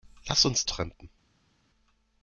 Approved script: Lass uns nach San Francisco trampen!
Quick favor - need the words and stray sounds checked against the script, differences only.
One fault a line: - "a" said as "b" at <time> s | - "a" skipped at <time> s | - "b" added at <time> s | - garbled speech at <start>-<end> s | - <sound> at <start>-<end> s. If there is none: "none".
- "nach San Francisco" skipped at 0.7 s